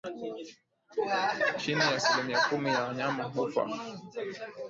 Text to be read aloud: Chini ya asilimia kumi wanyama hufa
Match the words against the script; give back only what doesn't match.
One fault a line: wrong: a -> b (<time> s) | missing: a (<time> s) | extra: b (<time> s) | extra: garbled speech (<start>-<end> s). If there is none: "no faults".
extra: ya (2.7 s)